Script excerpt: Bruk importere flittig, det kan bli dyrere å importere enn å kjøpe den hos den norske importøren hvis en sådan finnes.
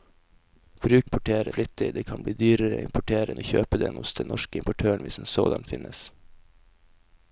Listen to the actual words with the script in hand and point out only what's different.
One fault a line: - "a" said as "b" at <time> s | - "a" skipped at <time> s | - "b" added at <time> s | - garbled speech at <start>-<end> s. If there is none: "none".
none